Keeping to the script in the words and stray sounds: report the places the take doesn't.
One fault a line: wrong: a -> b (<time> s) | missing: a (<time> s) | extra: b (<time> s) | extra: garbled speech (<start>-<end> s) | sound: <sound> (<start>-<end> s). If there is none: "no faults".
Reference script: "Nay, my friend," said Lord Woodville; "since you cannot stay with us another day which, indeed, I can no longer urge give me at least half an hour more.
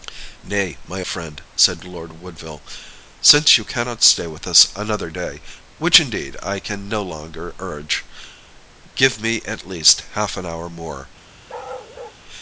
sound: bark (11.5-12.2 s)